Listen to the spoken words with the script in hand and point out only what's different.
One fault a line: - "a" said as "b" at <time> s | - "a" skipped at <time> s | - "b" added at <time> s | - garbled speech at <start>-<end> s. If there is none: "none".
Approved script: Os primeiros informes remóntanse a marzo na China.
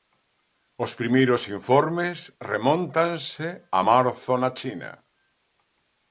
none